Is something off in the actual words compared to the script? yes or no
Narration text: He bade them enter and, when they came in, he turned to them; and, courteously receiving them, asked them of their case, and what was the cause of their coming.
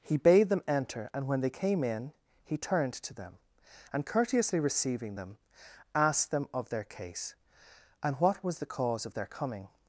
no